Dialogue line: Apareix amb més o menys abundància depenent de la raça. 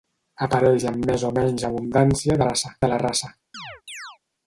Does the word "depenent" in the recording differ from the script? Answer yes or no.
yes